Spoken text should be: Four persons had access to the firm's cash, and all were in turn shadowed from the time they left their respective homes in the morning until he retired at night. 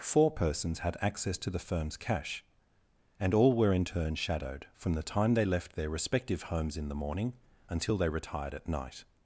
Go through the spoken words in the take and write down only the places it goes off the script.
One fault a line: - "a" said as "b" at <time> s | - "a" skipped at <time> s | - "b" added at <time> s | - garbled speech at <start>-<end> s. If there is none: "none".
- "he" said as "they" at 8.0 s